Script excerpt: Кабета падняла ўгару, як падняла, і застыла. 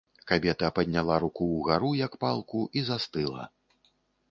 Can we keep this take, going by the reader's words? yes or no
no